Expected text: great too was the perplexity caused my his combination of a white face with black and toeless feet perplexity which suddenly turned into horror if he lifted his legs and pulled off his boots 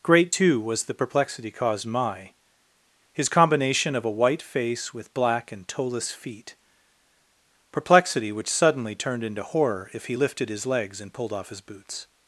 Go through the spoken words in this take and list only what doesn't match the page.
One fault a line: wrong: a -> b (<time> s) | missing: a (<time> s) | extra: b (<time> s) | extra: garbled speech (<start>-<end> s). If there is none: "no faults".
no faults